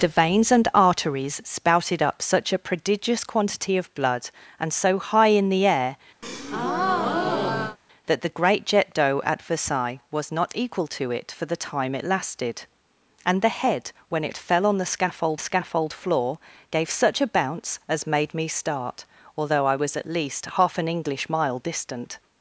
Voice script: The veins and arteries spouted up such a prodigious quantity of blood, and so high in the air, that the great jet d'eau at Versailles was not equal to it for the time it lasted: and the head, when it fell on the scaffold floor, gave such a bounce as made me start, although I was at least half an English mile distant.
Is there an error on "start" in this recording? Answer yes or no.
no